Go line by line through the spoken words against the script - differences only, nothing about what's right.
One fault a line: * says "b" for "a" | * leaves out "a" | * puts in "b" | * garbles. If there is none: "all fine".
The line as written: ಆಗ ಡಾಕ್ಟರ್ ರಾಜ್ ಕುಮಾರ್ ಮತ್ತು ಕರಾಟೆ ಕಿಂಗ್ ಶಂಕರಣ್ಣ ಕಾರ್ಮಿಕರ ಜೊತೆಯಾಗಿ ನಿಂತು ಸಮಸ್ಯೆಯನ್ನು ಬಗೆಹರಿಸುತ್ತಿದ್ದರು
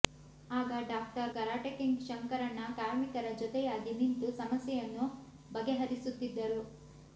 * leaves out "ರಾಜ್ ಕುಮಾರ್ ಮತ್ತು"